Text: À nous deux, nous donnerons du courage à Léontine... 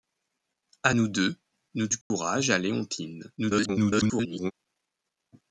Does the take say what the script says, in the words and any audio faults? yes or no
no